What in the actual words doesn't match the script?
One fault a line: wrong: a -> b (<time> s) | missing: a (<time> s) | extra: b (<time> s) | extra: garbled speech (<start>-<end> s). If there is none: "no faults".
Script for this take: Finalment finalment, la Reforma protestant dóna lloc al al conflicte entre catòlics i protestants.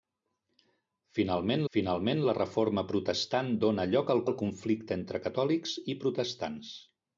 no faults